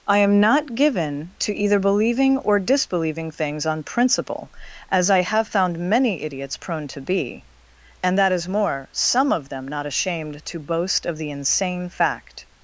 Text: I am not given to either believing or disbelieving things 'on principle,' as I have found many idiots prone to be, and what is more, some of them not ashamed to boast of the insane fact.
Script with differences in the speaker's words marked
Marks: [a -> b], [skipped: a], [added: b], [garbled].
I am not given to either believing or disbelieving things 'on principle,' as I have found many idiots prone to be, and [what -> that] is more, some of them not ashamed to boast of the insane fact.